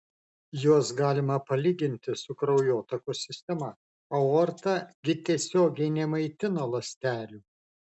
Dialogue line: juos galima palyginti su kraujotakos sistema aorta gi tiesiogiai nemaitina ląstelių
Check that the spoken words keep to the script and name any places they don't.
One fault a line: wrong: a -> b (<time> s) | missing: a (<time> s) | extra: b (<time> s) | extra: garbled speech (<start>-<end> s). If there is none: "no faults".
no faults